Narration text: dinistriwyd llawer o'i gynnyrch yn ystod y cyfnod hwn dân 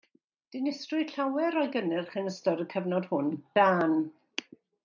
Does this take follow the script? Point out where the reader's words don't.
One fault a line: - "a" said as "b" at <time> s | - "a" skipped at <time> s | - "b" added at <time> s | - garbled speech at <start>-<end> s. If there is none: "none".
none